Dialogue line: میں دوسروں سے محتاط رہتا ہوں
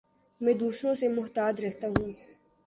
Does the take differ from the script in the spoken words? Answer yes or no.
no